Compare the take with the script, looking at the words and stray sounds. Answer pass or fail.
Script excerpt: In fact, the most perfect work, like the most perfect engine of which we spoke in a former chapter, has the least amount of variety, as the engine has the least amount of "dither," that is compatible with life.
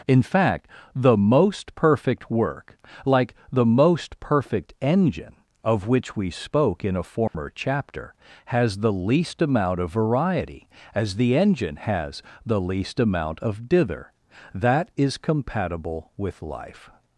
fail